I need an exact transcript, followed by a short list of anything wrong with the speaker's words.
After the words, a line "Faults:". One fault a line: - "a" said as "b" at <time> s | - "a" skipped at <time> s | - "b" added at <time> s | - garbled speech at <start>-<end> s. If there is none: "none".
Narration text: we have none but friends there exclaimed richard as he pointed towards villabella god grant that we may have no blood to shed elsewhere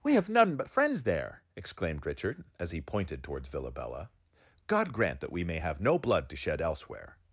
we have none but friends there exclaimed richard as he pointed towards villabella god grant that we may have no blood to shed elsewhere
Faults:
none